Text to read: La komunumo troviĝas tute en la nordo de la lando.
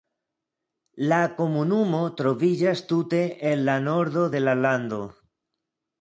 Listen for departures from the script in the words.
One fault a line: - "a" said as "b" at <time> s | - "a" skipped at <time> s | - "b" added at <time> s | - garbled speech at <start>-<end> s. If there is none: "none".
none